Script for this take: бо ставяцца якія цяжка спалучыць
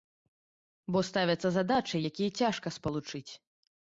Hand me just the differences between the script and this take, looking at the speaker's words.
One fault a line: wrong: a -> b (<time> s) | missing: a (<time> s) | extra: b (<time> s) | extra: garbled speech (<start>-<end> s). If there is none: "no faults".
extra: задачы (1.6 s)